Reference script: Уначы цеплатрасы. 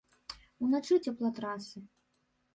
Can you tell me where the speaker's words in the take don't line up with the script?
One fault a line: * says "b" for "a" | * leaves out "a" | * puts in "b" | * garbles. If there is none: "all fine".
all fine